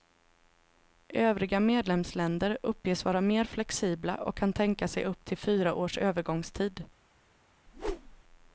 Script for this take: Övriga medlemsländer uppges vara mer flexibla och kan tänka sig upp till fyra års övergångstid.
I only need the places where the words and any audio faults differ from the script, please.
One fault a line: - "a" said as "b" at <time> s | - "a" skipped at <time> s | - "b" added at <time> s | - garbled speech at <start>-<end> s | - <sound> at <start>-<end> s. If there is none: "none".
- whoosh at 7.7-8.2 s